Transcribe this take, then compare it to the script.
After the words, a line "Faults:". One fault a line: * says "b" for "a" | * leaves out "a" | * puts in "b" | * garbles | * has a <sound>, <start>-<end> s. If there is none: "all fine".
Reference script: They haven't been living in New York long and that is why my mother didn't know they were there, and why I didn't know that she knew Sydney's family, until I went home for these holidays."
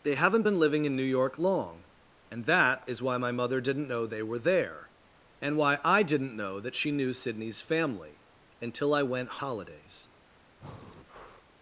They haven't been living in New York long and that is why my mother didn't know they were there, and why I didn't know that she knew Sydney's family, until I went holidays."
Faults:
* leaves out "home for these"
* has a breath, 10.6-11.5 s